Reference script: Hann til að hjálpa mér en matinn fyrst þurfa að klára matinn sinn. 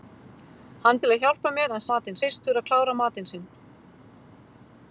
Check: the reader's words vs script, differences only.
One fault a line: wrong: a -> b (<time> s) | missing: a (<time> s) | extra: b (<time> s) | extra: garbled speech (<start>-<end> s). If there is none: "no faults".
no faults